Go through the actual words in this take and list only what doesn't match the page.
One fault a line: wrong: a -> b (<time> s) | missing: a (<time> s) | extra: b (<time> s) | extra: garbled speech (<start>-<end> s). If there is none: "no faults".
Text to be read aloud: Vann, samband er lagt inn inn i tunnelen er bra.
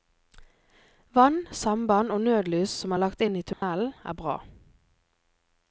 extra: og nødlys som (2.1 s)
missing: inn (3.4 s)